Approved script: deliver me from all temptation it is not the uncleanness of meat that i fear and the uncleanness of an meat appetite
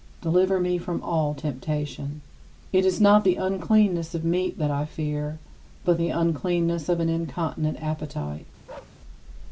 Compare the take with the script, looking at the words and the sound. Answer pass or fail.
fail